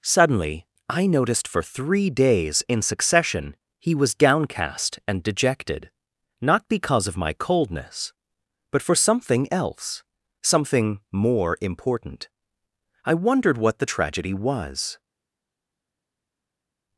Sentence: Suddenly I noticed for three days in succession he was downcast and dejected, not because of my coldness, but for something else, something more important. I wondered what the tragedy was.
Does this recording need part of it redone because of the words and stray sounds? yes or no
no